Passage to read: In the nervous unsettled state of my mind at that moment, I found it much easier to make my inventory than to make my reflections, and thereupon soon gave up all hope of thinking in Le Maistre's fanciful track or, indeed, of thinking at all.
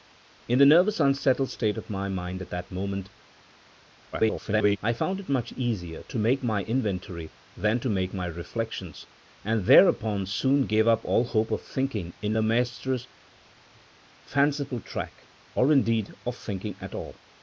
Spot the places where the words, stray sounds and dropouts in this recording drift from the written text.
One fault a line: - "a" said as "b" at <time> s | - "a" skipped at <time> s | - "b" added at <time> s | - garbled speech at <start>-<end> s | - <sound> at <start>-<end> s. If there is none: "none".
- garbled speech at 4.1-4.8 s